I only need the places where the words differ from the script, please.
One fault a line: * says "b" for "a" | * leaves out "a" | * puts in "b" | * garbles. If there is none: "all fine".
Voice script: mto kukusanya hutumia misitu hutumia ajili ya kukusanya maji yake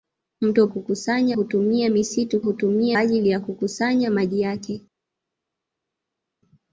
all fine